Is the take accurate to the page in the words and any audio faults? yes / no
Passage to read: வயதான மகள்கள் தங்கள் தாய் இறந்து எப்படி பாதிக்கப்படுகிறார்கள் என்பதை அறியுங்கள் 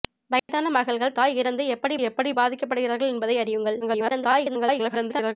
no